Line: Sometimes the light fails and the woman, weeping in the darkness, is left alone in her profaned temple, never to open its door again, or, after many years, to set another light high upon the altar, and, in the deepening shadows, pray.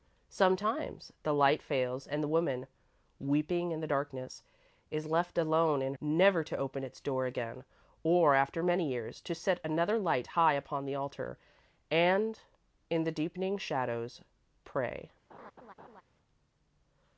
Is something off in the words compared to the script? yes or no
yes